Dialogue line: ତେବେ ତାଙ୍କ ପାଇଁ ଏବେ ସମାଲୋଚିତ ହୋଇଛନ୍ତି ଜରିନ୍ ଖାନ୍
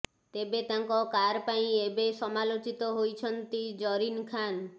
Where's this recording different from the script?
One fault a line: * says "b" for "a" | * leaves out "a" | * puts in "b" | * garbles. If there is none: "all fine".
* puts in "କାର୍"